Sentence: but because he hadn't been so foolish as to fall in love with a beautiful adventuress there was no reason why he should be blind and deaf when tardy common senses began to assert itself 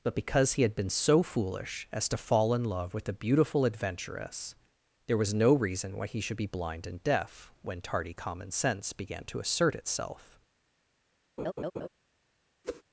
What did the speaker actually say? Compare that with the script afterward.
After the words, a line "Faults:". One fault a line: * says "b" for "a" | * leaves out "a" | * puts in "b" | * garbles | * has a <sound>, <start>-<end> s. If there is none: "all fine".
but because he had been so foolish as to fall in love with a beautiful adventuress there was no reason why he should be blind and deaf when tardy common sense began to assert itself
Faults:
* says "had" for "hadn't"
* says "sense" for "senses"
* has a laugh, 11.4-11.9 s
* has a whoosh, 12.6-12.8 s